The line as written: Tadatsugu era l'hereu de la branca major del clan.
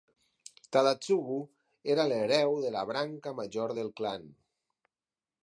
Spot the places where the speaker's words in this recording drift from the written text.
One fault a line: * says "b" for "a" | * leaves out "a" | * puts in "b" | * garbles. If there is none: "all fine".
all fine